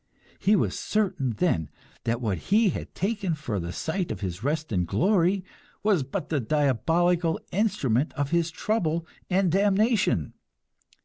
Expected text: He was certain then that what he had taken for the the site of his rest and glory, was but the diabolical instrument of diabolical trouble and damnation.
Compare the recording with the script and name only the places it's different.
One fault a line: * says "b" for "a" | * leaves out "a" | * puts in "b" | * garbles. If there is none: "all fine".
* leaves out "the"
* says "his" for "diabolical"